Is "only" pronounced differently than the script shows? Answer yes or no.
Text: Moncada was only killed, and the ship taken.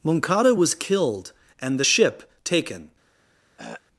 yes